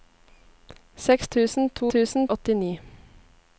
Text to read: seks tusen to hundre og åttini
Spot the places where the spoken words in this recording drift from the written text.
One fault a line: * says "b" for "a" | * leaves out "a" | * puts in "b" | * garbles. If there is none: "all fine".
* says "tusen" for "hundre"